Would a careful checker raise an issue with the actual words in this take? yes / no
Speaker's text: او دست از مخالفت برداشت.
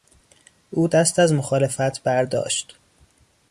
no